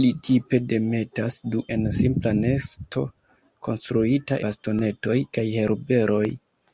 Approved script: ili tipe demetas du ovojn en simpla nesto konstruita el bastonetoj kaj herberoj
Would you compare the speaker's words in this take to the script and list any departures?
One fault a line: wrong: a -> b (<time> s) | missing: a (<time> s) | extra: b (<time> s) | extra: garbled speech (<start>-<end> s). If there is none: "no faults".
missing: ovojn (1.6 s)
missing: el (4.4 s)